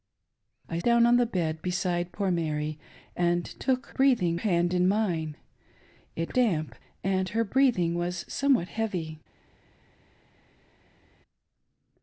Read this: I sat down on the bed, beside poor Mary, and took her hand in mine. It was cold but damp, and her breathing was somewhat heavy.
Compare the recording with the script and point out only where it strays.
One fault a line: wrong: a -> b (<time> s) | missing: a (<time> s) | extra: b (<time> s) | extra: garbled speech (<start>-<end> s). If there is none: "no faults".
missing: sat (0.8 s)
wrong: her -> breathing (3.9 s)
missing: was cold but (6.4 s)